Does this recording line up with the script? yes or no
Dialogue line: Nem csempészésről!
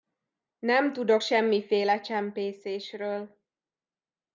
no